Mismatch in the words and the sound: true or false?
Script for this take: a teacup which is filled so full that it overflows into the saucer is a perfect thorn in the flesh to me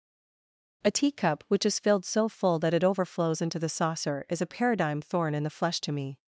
true